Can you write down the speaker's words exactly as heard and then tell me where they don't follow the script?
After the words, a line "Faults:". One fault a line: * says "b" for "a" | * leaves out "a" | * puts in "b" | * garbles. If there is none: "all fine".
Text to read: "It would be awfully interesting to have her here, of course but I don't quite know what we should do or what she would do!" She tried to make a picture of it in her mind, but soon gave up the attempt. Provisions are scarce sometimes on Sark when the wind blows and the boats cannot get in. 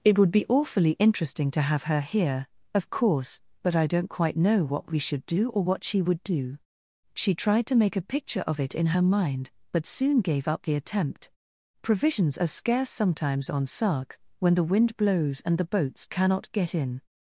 "It would be awfully interesting to have her here, of course but I don't quite know what we should do or what she would do!" She tried to make a picture of it in her mind, but soon gave up the attempt. Provisions are scarce sometimes on Sark when the wind blows and the boats cannot get in.
Faults:
all fine